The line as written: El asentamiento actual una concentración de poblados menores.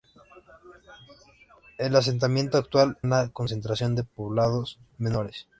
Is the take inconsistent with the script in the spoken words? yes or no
no